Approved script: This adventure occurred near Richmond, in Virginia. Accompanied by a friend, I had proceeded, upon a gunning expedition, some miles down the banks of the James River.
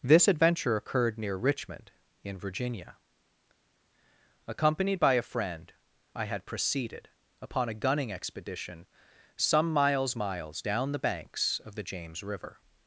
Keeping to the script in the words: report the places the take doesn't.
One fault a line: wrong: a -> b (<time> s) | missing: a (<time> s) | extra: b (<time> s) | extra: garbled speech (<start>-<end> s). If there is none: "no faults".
extra: miles (10.2 s)